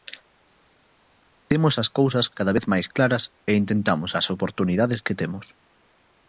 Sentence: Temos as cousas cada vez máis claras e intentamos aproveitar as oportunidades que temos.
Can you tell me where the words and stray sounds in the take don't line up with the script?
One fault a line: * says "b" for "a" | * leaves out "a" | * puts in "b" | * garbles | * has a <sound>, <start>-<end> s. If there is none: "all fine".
* leaves out "aproveitar"